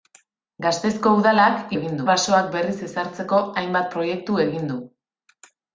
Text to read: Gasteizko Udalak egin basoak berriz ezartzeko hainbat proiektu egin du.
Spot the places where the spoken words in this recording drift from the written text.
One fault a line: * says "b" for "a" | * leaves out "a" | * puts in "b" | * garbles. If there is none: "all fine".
all fine